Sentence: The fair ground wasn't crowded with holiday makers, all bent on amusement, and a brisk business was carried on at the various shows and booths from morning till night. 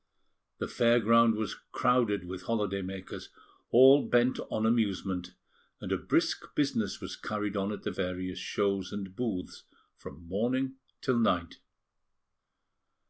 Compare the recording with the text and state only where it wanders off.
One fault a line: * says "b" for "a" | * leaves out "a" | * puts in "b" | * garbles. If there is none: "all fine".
* says "was" for "wasn't"